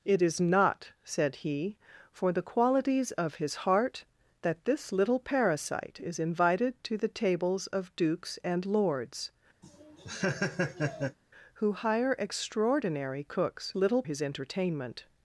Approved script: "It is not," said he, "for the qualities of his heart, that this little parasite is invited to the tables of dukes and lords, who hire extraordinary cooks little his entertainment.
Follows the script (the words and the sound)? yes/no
no